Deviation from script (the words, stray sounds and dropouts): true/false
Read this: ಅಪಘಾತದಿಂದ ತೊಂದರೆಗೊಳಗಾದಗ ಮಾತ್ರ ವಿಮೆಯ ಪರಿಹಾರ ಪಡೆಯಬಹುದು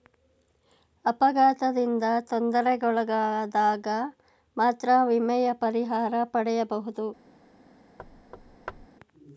true